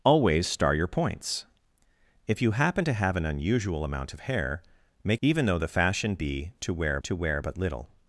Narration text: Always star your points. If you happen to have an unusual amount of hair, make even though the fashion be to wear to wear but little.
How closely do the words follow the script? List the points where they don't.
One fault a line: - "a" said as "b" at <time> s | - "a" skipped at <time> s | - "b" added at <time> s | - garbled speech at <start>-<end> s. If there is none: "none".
none